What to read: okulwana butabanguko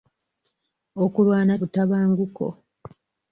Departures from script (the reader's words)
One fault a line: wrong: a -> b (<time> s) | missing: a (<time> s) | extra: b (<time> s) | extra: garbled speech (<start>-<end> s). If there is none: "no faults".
no faults